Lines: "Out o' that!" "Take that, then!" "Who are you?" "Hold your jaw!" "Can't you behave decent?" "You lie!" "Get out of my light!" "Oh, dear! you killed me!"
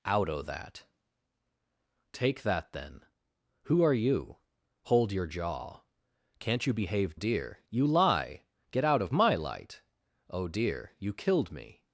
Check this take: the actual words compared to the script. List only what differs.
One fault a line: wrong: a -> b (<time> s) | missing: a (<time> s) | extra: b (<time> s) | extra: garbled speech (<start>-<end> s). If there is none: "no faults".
wrong: decent -> dear (7.1 s)